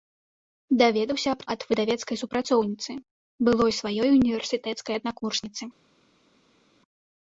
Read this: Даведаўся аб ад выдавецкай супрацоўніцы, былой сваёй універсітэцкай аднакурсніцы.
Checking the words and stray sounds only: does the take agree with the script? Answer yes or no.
yes